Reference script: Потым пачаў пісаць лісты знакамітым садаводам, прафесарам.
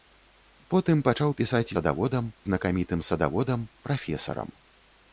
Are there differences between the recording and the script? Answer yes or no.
yes